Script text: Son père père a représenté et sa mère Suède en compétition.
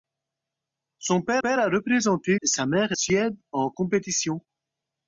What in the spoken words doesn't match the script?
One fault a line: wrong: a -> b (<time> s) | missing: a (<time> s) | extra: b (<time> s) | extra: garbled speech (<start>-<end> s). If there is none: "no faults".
no faults